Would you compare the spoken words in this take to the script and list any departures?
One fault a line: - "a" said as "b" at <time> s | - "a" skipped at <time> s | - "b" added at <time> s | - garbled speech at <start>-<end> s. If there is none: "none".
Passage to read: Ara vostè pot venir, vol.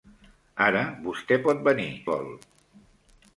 none